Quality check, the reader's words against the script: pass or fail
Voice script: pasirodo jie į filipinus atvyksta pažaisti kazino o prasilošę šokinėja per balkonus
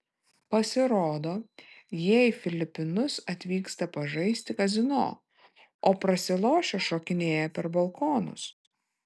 pass